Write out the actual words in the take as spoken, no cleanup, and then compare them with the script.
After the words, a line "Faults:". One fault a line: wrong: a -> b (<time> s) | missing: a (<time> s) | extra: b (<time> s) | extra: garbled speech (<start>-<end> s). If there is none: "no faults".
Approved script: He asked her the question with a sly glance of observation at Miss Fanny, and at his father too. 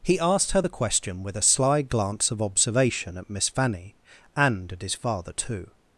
He asked her the question with a sly glance of observation at Miss Fanny, and at his father too.
Faults:
no faults